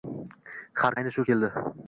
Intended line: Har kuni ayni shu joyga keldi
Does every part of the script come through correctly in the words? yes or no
no